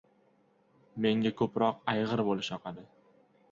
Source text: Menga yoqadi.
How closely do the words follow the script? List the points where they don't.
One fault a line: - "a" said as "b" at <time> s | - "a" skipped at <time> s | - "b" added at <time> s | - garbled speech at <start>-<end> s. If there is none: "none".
- "ko‘proq ayg‘ir bo‘lish" added at 1.4 s